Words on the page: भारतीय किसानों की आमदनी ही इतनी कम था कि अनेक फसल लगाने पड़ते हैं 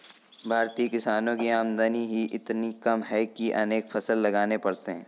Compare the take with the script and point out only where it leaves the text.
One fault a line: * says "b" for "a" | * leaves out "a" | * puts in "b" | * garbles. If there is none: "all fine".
* says "है" for "था"